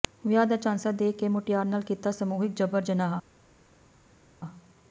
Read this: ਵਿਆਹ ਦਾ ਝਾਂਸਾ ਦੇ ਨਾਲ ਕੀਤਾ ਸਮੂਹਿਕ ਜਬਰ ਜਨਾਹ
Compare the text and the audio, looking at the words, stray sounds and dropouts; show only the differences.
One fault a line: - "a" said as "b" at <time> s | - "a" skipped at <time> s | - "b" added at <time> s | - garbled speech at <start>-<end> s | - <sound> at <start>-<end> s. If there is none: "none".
- "ਕੇ ਮੁਟਿਆਰ" added at 1.1 s